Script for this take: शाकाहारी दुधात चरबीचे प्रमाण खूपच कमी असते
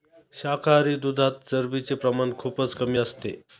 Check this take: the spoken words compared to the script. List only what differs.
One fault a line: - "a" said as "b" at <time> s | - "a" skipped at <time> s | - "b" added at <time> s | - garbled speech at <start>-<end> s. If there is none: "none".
none